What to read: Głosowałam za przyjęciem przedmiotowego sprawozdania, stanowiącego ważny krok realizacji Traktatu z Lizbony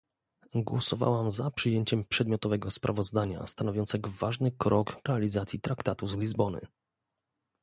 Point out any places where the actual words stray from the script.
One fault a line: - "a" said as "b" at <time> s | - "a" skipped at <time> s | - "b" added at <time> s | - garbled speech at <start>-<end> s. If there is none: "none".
none